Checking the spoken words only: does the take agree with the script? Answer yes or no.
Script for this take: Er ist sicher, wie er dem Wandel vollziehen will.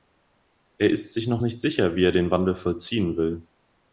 no